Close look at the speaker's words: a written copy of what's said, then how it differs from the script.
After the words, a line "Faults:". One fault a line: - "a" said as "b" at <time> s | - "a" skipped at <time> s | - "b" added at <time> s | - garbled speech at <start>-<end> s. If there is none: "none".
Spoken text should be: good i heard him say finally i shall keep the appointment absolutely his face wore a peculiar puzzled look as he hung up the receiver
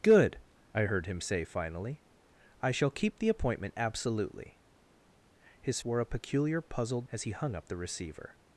good i heard him say finally i shall keep the appointment absolutely his wore a peculiar puzzled as he hung up the receiver
Faults:
- "face" skipped at 5.8 s
- "look" skipped at 7.1 s